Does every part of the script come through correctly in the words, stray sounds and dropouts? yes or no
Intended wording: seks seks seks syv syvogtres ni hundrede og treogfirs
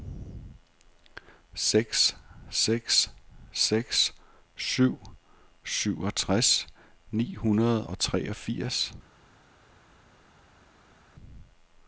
yes